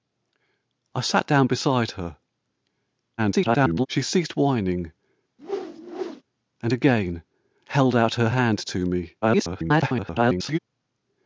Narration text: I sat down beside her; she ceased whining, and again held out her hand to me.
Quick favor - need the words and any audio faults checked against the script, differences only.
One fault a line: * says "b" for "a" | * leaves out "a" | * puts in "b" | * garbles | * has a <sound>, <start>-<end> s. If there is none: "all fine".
* garbles
* has a whoosh, 5.4-6.2 s
* garbles